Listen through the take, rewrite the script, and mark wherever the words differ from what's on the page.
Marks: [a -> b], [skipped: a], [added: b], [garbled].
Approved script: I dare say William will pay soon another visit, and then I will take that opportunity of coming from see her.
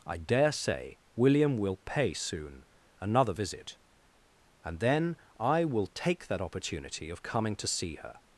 I dare say William will pay soon another visit, and then I will take that opportunity of coming [from -> to] see her.